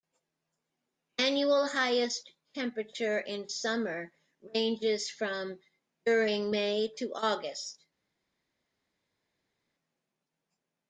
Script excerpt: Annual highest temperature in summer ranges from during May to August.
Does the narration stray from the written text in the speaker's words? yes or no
no